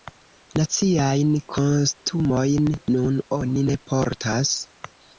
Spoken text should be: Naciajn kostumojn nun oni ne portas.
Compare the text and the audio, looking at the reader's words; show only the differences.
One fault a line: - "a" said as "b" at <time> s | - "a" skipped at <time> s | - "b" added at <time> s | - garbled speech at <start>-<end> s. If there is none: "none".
none